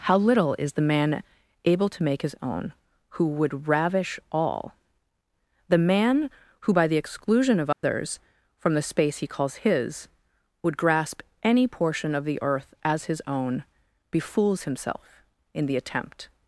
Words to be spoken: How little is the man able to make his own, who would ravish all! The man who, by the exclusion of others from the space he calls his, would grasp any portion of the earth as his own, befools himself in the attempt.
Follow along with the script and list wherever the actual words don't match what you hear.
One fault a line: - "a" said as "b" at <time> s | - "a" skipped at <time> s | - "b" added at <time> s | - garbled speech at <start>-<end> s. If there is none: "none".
none